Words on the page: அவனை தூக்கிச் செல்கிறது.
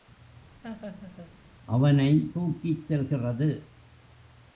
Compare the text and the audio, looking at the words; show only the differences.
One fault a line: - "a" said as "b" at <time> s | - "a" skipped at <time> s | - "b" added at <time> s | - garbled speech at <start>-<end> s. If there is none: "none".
none